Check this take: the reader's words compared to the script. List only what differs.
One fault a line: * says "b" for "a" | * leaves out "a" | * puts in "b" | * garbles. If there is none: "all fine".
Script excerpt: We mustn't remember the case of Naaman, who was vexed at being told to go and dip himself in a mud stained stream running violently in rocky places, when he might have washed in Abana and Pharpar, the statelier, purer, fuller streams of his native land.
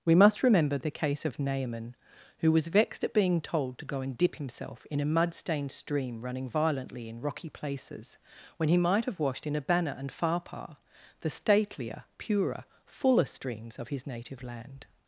* says "must" for "mustn't"